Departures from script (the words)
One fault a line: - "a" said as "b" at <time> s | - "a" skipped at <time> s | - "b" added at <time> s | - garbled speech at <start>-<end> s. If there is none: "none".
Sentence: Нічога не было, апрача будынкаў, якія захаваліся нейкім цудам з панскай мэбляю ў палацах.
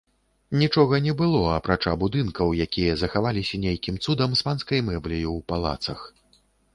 none